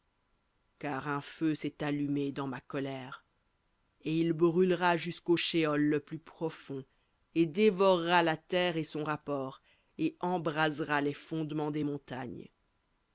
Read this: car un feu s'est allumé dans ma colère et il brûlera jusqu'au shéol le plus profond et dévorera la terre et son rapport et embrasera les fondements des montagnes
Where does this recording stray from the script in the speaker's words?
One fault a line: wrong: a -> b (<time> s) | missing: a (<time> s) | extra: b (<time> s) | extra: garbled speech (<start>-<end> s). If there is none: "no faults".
no faults